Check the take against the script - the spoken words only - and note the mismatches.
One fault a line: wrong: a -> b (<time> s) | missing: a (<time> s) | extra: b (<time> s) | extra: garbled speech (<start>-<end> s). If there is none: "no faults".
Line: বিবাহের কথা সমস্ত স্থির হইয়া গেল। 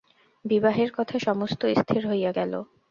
no faults